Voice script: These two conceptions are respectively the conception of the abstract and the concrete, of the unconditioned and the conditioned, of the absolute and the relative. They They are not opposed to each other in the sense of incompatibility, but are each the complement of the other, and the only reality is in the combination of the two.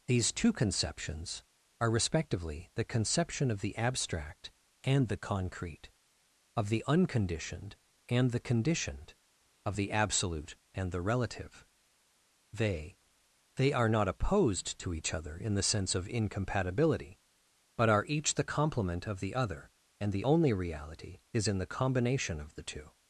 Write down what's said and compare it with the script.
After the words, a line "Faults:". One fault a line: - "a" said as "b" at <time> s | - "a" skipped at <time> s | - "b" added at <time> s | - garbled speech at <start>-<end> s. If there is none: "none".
These two conceptions are respectively the conception of the abstract and the concrete, of the unconditioned and the conditioned, of the absolute and the relative. They They are not opposed to each other in the sense of incompatibility, but are each the complement of the other, and the only reality is in the combination of the two.
Faults:
none